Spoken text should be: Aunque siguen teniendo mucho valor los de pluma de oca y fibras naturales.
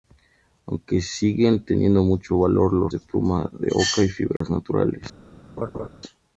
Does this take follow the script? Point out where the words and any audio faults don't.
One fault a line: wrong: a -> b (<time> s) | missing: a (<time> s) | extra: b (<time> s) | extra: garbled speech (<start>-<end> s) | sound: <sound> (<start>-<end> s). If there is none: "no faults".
sound: dropout (4.4-4.4 s)
sound: laugh (5.6-5.9 s)